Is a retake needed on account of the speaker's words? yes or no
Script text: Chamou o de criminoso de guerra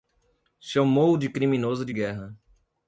no